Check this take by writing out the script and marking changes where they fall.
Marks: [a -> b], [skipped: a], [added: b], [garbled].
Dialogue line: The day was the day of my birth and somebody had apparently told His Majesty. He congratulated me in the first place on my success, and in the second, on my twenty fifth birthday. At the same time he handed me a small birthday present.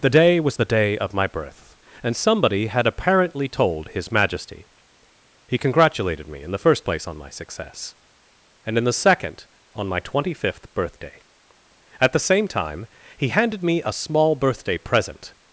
The day was the day of my birth and somebody had apparently told His Majesty. He congratulated me in the first place on my success, and in the second, on my twenty fifth birthday. At the same time he handed me a small birthday present.